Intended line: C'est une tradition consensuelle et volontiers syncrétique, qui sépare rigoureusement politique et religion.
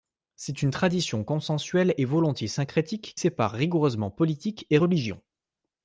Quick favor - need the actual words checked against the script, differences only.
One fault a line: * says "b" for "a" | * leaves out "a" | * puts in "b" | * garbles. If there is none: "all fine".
* leaves out "qui"